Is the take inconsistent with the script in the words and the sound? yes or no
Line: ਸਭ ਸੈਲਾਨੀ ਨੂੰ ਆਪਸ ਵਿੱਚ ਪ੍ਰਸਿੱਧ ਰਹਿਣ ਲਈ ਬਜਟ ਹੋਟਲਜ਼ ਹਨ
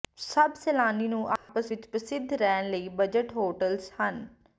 yes